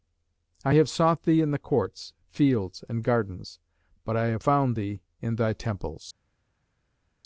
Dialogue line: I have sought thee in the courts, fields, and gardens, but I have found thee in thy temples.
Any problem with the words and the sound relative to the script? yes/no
no